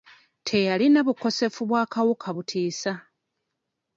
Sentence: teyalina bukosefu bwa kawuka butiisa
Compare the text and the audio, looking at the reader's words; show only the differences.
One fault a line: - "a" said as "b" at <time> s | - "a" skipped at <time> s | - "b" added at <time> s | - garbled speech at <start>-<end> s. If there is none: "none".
none